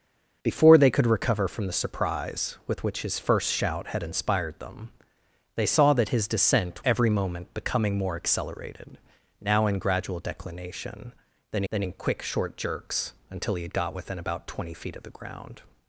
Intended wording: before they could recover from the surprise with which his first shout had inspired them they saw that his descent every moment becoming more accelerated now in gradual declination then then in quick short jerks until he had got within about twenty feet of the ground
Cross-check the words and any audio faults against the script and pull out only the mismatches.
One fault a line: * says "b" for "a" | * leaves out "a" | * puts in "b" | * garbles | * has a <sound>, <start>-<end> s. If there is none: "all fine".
all fine